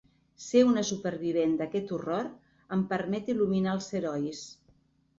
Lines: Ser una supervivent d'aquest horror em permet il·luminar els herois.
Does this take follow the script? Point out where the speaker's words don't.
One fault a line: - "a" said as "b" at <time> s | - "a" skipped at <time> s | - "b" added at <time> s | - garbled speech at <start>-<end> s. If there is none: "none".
none